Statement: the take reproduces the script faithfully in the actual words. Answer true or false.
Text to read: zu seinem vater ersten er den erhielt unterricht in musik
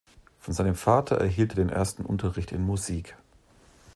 false